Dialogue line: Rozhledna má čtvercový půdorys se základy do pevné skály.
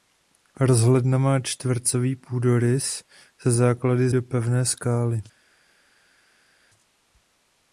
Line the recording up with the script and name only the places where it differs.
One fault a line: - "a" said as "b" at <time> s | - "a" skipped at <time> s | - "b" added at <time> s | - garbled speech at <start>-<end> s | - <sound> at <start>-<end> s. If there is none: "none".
none